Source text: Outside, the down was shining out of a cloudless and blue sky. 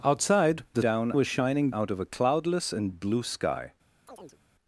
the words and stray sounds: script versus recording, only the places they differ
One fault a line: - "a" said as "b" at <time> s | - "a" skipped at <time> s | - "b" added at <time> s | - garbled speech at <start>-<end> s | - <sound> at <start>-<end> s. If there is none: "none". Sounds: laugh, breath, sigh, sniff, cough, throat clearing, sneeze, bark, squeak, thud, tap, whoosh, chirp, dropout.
- chirp at 4.1-4.4 s